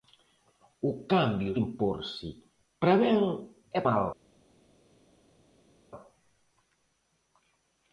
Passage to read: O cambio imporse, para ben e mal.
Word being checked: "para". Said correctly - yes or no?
yes